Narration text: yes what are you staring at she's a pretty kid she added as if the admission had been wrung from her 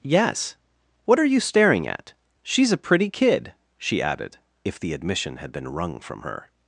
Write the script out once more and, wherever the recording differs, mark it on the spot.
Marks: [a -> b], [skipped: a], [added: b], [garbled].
yes what are you staring at she's a pretty kid she added [skipped: as] if the admission had been wrung from her